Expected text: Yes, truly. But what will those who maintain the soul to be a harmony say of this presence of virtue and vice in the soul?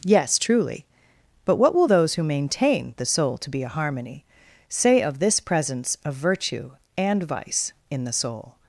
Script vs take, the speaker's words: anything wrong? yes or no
no